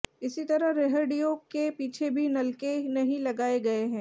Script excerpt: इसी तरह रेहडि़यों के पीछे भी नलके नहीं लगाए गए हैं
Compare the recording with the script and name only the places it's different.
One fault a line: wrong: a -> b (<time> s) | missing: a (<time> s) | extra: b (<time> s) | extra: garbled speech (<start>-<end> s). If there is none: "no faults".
no faults